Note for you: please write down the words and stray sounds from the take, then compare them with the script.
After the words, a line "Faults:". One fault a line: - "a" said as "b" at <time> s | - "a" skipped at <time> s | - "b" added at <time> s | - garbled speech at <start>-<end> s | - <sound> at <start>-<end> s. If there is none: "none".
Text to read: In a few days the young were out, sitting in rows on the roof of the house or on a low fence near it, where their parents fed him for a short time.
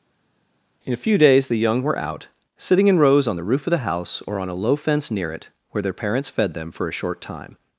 In a few days the young were out, sitting in rows on the roof of the house or on a low fence near it, where their parents fed them for a short time.
Faults:
- "him" said as "them" at 6.5 s